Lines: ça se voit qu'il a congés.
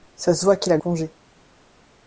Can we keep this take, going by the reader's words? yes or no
yes